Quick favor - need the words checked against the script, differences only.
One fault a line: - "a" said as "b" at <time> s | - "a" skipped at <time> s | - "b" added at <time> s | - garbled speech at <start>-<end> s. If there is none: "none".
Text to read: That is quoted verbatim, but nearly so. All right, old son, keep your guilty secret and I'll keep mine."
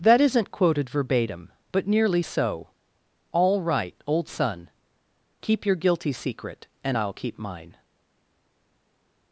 - "is" said as "isn't" at 0.2 s